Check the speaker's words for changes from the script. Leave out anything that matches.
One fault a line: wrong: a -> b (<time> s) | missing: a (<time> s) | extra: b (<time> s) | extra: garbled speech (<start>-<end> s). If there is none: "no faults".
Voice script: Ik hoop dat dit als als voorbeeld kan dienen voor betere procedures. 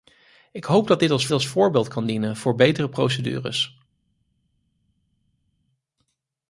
no faults